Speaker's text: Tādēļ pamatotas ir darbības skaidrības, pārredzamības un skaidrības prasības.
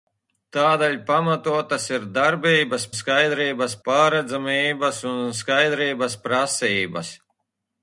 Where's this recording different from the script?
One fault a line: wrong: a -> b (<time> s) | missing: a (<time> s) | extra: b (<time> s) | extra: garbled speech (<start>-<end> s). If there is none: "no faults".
no faults